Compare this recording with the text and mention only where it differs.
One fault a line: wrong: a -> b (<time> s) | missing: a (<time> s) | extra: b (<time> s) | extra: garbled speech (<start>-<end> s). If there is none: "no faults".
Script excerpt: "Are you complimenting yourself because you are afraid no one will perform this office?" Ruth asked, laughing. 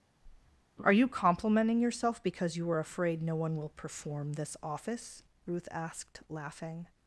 no faults